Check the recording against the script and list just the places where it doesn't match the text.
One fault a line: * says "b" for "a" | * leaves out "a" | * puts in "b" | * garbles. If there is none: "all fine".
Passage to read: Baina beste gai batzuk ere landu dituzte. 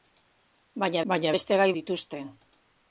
* puts in "baina"
* leaves out "batzuk ere landu"